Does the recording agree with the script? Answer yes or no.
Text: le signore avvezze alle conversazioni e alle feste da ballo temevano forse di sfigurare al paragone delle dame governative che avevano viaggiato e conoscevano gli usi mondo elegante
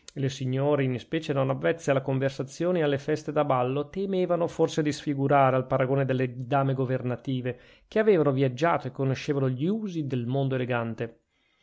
no